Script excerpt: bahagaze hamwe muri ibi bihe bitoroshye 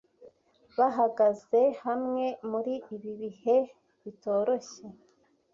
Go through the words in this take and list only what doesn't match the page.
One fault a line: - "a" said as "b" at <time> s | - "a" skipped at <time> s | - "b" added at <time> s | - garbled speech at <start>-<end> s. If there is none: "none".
none